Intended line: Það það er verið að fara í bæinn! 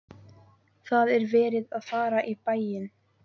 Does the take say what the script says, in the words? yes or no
no